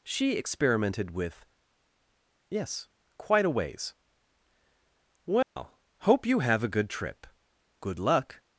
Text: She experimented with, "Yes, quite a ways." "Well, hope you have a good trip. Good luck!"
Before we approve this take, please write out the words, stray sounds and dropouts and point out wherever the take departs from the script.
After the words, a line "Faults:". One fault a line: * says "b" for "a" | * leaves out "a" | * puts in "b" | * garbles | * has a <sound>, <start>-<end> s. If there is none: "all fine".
She experimented with, "Yes, quite a ways." "Well, hope you have a good trip. Good luck!"
Faults:
* has a dropout, 5.4-5.6 s